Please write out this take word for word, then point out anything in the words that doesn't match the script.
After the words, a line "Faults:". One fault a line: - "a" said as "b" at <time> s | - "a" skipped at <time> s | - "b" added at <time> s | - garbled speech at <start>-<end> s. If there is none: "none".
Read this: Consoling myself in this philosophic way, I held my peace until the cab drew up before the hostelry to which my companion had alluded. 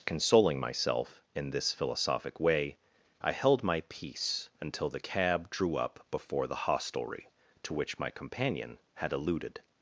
Consoling myself in this philosophic way, I held my peace until the cab drew up before the hostelry to which my companion had alluded.
Faults:
none